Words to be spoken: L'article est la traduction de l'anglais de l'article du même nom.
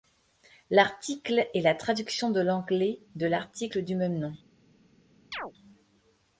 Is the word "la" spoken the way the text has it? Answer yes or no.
yes